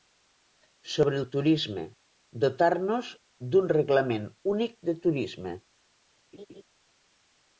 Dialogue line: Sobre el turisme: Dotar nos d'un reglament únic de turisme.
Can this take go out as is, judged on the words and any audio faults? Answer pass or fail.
fail